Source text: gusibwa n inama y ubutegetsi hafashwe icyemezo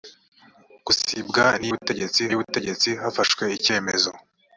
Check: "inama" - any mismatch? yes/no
yes